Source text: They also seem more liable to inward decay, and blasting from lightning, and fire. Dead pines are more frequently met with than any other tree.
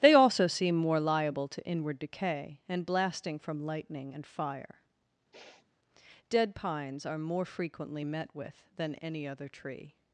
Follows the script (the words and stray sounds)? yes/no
no